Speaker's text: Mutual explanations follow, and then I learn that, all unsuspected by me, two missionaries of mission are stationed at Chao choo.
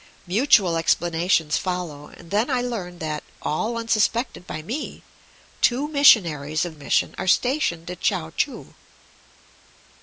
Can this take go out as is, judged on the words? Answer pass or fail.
pass